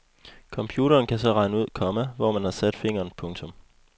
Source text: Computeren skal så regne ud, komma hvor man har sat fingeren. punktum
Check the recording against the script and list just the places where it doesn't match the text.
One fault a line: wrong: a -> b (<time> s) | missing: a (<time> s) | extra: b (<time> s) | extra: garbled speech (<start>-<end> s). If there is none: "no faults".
wrong: skal -> kan (1.1 s)